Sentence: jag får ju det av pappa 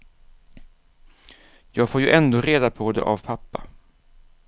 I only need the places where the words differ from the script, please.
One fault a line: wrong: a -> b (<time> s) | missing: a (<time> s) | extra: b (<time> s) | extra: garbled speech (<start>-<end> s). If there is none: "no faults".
extra: ändå reda på (2.1 s)